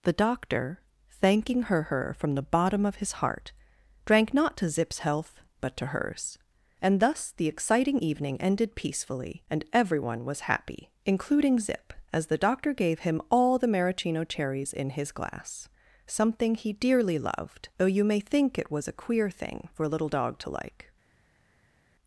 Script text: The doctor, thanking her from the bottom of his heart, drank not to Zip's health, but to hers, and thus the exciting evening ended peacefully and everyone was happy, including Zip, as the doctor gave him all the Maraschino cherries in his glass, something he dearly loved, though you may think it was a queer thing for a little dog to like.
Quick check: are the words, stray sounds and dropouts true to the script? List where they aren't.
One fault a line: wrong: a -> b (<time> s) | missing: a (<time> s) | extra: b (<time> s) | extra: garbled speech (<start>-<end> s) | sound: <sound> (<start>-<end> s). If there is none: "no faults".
extra: her (1.8 s)